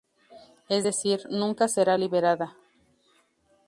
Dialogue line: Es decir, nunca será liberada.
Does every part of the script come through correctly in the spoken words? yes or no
yes